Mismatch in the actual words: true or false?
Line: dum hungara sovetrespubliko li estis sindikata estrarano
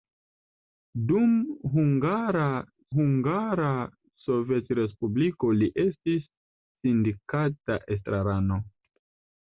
true